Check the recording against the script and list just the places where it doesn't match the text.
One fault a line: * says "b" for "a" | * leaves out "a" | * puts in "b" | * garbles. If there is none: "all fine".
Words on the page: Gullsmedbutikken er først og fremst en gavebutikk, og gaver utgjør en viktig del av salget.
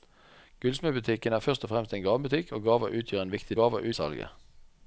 * says "gaver" for "del"